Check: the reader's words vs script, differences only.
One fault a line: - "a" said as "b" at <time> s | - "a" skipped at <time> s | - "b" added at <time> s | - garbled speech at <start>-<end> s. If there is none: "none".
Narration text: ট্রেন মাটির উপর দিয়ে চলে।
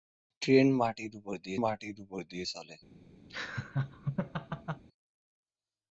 - "মাটির উপর দিয়ে" added at 1.6 s